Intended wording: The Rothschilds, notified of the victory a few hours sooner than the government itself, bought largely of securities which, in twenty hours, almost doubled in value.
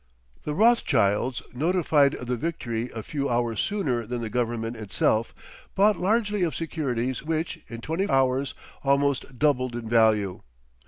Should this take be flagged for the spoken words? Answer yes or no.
no